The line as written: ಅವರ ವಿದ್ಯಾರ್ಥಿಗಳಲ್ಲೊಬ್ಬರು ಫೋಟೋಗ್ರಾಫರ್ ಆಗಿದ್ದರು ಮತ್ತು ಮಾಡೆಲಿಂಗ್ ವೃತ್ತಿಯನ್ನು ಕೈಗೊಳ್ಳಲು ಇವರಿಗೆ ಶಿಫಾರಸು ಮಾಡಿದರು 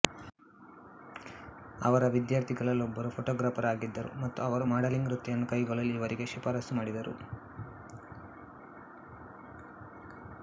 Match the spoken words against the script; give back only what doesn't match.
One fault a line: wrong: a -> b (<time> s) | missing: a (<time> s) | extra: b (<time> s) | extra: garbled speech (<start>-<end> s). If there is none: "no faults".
extra: ಅವರು (4.4 s)